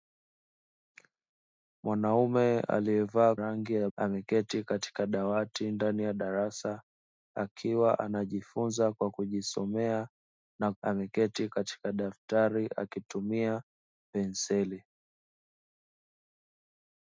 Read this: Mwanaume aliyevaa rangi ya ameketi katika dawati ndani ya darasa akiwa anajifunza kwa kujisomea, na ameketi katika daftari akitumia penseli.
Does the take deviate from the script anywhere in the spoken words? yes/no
no